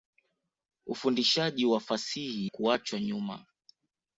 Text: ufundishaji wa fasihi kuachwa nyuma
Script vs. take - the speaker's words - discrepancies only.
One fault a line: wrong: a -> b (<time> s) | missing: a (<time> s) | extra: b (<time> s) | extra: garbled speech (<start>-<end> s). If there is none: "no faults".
no faults